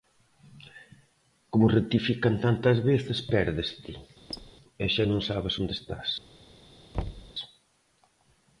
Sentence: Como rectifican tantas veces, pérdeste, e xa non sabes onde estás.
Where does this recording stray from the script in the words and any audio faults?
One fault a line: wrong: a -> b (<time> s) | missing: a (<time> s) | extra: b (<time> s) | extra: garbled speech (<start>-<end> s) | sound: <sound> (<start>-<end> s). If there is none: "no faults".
sound: squeak (4.3-4.5 s)
sound: thud (6.9-7.3 s)